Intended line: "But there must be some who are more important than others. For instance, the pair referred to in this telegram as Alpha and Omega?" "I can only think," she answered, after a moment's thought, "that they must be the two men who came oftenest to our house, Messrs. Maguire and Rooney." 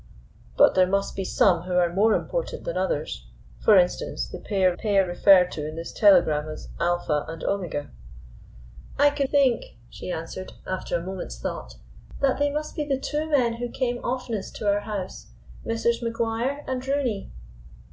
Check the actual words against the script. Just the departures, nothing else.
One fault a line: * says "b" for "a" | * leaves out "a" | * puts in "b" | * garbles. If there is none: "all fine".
* puts in "pair"
* leaves out "only"